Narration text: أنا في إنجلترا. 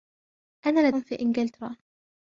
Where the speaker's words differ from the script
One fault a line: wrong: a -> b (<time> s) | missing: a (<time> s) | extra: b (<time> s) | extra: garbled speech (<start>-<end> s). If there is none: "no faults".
no faults